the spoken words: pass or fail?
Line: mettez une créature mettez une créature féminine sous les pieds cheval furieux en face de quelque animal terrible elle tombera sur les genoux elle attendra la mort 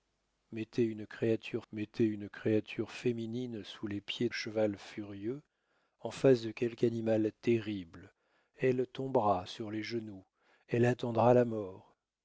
pass